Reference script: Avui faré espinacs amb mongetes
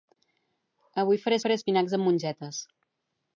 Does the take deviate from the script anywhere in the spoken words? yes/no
yes